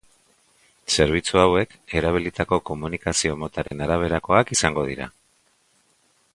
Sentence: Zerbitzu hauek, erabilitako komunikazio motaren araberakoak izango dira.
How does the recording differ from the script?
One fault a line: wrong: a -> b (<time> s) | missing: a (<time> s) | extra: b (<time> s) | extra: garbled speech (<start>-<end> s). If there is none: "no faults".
no faults